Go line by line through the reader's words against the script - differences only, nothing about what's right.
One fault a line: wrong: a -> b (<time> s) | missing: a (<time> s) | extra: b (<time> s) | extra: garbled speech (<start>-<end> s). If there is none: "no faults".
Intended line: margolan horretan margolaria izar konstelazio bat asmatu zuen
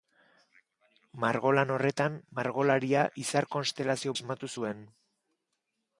missing: bat (4.2 s)